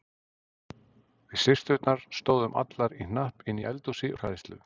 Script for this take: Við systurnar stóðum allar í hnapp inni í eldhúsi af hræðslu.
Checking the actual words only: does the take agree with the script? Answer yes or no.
yes